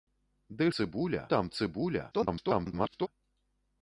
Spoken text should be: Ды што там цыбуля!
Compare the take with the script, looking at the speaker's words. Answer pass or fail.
fail